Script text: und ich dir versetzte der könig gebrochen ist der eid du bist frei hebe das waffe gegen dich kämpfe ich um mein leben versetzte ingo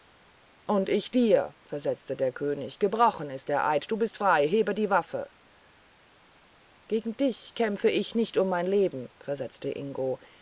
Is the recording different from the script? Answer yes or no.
yes